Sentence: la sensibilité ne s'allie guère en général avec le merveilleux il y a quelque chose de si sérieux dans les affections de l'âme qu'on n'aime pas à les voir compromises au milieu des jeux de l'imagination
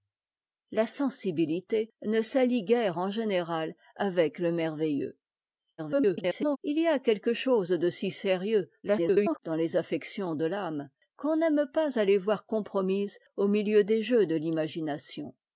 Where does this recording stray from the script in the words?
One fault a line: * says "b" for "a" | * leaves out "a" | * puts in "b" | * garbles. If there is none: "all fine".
* garbles
* garbles